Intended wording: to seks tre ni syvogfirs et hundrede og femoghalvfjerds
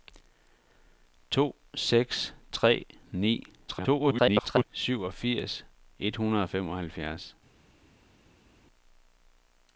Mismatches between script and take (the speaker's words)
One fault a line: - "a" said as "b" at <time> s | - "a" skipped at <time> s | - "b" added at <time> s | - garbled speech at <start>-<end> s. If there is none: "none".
- garbled speech at 3.7-4.6 s